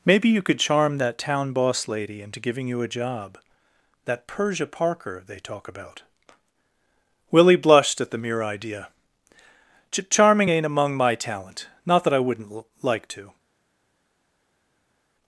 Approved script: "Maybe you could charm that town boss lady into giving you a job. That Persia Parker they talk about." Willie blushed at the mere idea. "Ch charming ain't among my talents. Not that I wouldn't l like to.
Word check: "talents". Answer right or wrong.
wrong